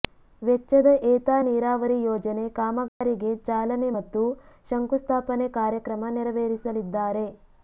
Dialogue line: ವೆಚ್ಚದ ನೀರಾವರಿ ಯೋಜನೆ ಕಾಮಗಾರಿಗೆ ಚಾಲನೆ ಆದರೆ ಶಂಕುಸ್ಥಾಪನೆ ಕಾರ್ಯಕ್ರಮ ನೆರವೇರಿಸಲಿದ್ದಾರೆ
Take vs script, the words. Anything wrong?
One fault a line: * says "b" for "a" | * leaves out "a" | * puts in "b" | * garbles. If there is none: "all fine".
* puts in "ಏತ"
* says "ಮತ್ತು" for "ಆದರೆ"